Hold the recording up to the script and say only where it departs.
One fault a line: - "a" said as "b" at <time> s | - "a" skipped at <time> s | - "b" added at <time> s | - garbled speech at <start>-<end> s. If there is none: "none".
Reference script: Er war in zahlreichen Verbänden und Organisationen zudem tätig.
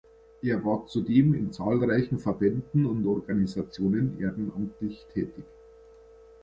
- "zudem" added at 0.9 s
- "zudem" said as "ehrenamtlich" at 4.2 s